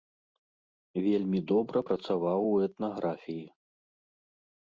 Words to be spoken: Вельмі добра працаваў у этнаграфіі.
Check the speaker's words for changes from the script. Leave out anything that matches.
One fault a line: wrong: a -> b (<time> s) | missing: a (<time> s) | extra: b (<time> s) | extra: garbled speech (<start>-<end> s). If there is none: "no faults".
no faults